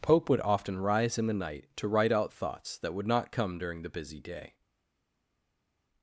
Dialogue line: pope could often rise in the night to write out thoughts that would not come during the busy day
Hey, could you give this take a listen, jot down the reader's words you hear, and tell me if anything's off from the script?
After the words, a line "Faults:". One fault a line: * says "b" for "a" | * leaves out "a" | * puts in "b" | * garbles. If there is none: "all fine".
pope would often rise in the night to write out thoughts that would not come during the busy day
Faults:
* says "would" for "could"